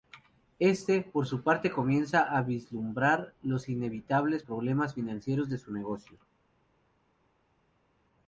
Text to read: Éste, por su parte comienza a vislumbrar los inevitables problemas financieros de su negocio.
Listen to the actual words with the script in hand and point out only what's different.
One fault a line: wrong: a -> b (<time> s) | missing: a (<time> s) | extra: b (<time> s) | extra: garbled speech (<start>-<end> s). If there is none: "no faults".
no faults